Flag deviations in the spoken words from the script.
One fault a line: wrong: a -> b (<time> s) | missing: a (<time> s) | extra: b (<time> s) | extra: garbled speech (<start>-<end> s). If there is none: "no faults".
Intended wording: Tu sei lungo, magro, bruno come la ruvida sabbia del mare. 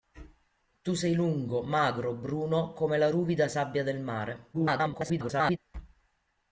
extra: garbled speech (4.5-5.6 s)